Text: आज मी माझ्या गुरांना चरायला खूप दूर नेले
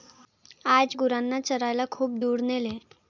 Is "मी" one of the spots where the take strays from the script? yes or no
yes